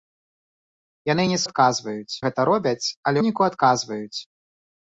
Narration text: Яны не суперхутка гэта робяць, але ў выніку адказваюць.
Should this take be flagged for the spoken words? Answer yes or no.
yes